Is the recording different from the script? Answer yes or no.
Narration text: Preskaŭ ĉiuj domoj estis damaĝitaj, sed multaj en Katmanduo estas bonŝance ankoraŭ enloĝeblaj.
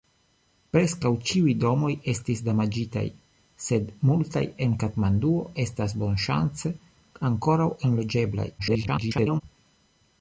yes